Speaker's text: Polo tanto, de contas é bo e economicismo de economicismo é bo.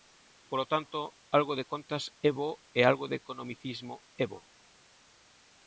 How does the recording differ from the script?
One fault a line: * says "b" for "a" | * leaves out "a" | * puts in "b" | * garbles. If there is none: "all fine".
* puts in "algo"
* says "algo" for "economicismo"